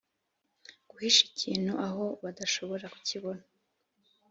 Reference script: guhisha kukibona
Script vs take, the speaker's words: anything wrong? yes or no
yes